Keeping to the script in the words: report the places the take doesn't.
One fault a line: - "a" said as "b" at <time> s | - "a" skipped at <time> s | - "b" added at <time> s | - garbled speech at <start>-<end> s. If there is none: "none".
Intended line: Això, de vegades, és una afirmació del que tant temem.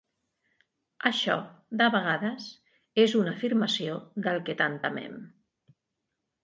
none